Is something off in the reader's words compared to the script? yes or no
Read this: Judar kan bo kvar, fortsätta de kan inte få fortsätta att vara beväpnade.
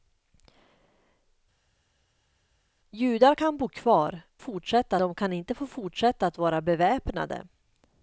no